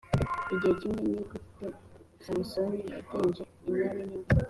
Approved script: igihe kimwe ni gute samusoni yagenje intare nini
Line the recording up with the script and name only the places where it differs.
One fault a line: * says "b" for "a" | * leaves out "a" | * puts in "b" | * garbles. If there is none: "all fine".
all fine